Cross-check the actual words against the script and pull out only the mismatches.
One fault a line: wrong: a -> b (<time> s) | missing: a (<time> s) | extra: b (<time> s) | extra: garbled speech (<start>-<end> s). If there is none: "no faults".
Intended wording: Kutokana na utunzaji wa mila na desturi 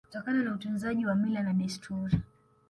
no faults